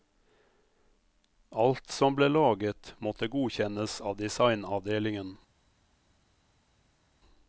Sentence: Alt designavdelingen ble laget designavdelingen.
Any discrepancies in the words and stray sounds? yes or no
yes